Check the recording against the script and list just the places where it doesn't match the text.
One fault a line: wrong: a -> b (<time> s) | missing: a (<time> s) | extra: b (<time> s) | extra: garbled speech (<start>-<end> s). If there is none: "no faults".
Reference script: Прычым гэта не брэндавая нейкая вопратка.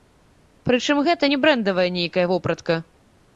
no faults